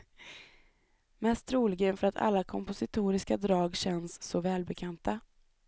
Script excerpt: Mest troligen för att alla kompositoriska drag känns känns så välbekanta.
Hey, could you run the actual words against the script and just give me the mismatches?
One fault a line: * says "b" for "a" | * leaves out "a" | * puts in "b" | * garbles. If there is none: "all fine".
* leaves out "känns"